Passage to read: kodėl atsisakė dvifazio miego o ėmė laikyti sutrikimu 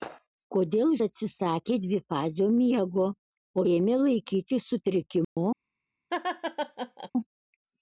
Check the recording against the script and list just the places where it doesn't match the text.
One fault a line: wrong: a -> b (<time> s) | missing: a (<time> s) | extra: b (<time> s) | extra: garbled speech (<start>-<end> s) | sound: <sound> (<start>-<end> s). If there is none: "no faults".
sound: dropout (5.2-5.4 s)
sound: laugh (6.1-7.1 s)